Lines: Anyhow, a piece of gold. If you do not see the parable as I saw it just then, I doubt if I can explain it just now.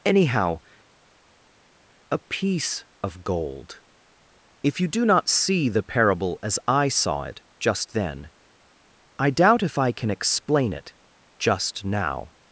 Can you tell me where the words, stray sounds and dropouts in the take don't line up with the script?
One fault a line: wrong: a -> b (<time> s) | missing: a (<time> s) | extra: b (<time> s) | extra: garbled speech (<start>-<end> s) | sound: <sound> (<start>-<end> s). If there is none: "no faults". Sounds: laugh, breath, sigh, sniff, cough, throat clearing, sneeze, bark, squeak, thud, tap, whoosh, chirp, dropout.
no faults